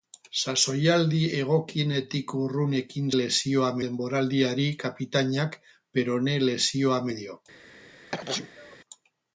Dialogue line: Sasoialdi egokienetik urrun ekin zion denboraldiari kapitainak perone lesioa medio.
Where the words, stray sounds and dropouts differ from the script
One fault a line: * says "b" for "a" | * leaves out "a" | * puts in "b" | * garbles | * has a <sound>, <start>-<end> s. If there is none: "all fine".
* says "lesioa" for "zion"
* has a sneeze, 8.1-8.8 s